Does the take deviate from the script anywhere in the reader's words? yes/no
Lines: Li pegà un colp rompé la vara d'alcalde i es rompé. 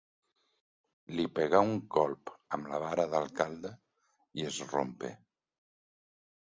yes